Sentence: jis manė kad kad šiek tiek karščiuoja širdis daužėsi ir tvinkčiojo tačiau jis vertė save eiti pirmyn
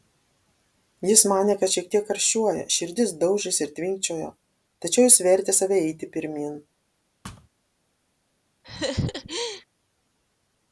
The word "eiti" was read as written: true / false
true